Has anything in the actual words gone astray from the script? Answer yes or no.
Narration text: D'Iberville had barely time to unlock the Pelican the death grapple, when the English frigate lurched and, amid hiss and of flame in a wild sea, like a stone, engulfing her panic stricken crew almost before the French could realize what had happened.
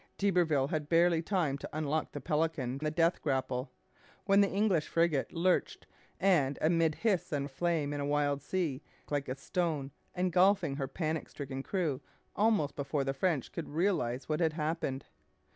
no